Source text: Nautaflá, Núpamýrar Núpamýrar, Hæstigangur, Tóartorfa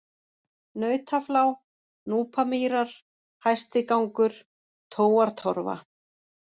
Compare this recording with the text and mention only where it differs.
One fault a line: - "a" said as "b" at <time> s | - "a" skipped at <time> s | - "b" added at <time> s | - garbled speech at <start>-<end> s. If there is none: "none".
- "Núpamýrar" skipped at 2.9 s